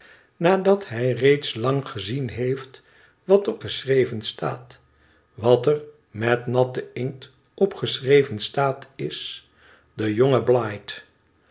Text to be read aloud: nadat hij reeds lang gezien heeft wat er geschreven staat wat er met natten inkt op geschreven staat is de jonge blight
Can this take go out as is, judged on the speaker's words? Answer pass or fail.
pass